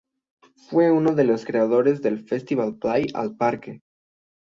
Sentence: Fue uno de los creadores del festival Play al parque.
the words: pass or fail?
pass